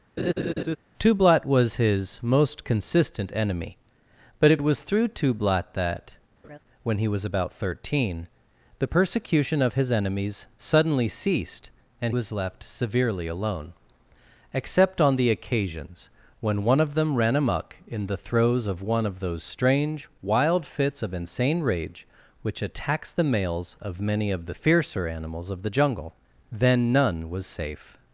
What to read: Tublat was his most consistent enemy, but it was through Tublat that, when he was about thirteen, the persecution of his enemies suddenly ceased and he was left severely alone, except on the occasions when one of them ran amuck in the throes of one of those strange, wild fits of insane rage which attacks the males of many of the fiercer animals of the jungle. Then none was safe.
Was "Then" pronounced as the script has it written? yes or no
yes